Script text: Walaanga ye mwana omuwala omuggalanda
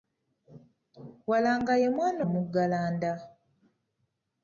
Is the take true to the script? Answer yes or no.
no